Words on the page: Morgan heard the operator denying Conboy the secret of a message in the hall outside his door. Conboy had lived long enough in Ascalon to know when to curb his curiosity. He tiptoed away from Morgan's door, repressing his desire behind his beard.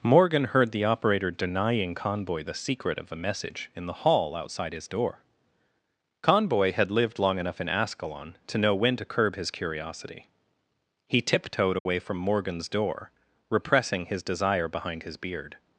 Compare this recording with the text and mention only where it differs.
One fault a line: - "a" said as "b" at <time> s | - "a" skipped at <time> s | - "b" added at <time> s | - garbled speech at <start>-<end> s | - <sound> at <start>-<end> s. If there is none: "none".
- dropout at 11.8-11.9 s